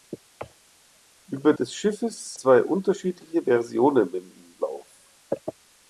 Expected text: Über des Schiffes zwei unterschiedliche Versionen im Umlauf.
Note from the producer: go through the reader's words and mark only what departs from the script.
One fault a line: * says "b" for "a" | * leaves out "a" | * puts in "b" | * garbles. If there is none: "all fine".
all fine